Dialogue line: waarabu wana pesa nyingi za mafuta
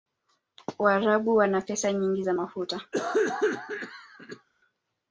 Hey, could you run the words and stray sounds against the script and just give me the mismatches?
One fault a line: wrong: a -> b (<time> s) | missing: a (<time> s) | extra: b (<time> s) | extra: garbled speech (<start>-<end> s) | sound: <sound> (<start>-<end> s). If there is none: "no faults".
sound: cough (2.9-4.5 s)